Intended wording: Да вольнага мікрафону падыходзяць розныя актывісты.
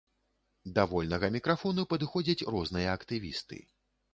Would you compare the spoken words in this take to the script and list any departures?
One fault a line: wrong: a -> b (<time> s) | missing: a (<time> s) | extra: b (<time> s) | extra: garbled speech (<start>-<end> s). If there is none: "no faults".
no faults